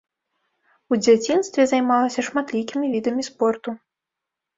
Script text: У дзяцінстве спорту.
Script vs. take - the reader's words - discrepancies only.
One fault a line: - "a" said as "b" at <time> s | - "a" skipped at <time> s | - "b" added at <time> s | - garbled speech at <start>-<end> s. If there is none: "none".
- "займалася шматлікімі відамі" added at 1.7 s